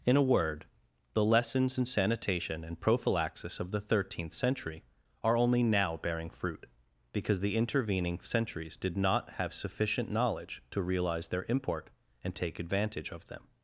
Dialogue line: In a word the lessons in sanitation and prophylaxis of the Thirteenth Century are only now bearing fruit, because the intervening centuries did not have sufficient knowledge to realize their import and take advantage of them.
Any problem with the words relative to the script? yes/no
no